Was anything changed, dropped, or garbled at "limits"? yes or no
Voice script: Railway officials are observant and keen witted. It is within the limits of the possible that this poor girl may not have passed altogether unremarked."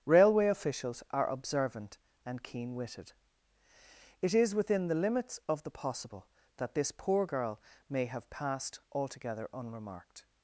no